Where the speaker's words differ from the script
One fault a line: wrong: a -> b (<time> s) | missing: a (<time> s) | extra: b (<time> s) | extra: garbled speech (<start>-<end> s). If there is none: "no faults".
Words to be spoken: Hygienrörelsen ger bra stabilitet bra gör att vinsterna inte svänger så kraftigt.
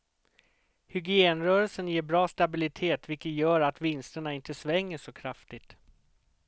wrong: bra -> vilket (3.1 s)